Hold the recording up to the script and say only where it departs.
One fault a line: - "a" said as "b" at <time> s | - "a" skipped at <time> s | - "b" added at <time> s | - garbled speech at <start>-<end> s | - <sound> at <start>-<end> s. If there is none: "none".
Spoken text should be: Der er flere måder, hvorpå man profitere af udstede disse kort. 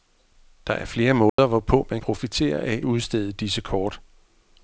- dropout at 1.3-1.4 s